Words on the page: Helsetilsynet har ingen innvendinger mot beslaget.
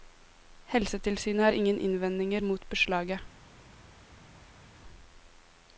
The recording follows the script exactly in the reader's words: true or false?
true